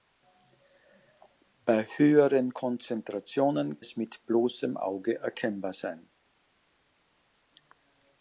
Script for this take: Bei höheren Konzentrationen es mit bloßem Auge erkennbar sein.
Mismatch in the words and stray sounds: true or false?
false